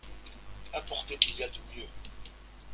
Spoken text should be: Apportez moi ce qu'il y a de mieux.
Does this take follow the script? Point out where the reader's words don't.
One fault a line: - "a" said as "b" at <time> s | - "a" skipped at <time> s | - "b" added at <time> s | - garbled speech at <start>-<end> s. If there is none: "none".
- "moi ce" skipped at 1.1 s